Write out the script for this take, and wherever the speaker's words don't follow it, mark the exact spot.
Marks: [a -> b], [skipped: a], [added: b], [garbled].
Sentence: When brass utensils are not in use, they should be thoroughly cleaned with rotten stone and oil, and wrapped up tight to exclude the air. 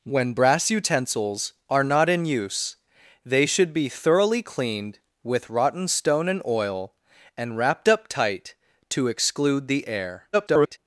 When brass utensils are not in use, they should be thoroughly cleaned with rotten stone and oil, and wrapped up tight to exclude the air. [garbled]